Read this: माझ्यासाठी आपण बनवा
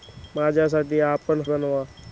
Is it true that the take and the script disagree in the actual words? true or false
false